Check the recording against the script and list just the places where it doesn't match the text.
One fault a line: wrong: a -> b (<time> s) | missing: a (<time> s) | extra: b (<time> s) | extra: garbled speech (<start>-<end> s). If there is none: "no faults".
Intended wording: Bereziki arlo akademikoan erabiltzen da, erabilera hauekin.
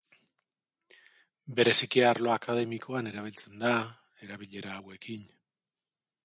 no faults